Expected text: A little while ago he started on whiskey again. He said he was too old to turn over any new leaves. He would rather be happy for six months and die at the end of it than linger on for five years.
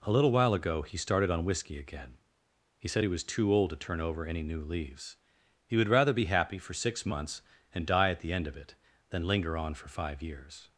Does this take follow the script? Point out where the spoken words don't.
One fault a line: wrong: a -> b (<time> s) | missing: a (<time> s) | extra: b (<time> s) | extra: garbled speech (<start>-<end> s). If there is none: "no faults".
no faults